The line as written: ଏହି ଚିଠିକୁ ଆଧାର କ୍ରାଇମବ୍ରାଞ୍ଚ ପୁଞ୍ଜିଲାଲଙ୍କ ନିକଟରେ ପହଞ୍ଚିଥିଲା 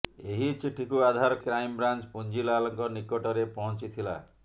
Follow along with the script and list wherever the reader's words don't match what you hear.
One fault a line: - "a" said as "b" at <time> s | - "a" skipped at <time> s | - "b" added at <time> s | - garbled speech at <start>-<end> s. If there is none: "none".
none